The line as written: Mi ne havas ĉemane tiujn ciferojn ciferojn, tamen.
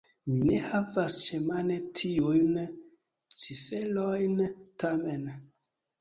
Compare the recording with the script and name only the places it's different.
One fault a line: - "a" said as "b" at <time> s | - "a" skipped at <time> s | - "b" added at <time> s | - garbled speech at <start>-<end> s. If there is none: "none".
- "ciferojn" skipped at 4.4 s